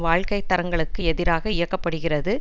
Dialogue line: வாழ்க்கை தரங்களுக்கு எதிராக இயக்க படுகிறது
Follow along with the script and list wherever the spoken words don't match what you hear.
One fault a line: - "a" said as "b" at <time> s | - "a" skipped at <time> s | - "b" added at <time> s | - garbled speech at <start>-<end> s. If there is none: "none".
none